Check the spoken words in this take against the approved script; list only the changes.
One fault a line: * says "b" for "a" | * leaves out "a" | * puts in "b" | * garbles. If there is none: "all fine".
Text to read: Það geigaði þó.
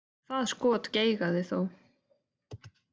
* puts in "skot"